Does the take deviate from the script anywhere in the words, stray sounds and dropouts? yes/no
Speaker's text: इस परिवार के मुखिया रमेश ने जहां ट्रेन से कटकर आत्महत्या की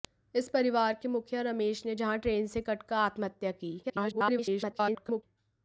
yes